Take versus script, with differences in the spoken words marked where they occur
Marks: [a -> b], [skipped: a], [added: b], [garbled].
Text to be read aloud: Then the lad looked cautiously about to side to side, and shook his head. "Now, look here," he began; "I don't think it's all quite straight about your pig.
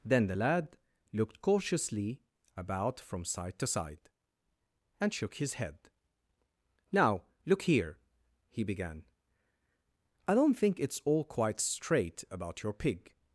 Then the lad looked cautiously about [to -> from] side to side, and shook his head. "Now, look here," he began; "I don't think it's all quite straight about your pig.